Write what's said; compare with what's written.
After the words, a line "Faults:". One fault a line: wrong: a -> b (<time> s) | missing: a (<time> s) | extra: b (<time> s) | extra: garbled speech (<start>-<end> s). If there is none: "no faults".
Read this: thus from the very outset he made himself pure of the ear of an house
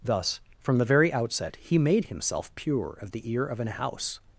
thus from the very outset he made himself pure of the ear of an house
Faults:
no faults